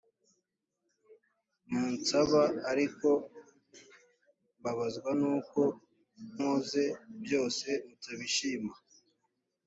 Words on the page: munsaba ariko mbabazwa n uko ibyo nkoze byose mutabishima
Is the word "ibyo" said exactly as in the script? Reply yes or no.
no